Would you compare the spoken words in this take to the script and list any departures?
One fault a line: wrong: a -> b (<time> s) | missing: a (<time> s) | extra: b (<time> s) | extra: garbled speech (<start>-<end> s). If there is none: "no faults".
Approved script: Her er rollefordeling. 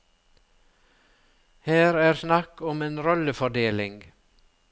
extra: snakk om en (2.1 s)